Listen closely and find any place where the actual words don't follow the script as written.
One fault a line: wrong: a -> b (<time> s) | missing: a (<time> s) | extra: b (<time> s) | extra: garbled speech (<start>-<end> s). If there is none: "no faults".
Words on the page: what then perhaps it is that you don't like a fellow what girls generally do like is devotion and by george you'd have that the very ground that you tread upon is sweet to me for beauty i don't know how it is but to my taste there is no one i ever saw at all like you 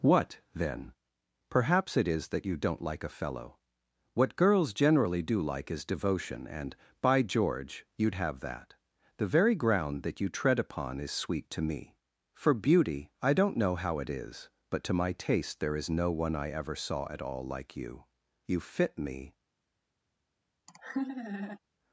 extra: you fit me (18.5 s)